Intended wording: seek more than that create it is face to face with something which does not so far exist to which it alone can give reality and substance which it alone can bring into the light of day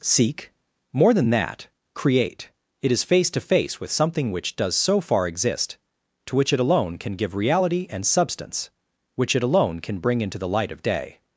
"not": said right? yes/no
no